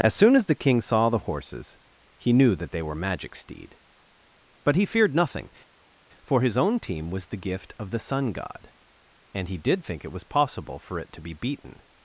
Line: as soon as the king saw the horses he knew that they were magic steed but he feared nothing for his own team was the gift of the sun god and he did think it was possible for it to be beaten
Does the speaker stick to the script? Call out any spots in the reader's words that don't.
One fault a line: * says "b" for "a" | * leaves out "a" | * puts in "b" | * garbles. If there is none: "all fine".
all fine